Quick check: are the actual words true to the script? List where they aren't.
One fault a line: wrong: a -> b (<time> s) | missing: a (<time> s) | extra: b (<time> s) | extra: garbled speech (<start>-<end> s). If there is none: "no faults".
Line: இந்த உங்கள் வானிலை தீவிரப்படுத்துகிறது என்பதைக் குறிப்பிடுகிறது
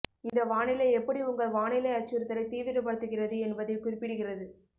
extra: வானிலை எப்படி (0.4 s)
extra: அச்சுறுத்தலை (1.9 s)